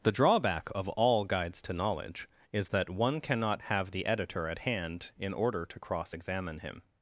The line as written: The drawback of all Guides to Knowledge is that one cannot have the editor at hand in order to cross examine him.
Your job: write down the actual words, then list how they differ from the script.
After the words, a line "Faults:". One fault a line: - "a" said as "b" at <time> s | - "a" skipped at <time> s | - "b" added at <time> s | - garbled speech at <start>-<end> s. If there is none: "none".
The drawback of all Guides to Knowledge is that one cannot have the editor at hand in order to cross examine him.
Faults:
none